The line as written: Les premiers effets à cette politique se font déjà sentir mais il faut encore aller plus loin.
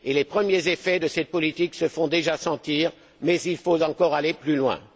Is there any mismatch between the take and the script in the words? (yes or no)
yes